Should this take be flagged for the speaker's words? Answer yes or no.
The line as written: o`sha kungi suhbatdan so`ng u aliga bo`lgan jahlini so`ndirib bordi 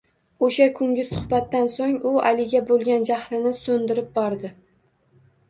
no